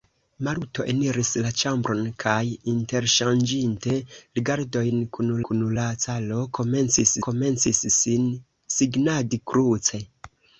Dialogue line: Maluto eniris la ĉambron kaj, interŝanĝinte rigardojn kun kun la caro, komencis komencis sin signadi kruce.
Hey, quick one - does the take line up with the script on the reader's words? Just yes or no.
yes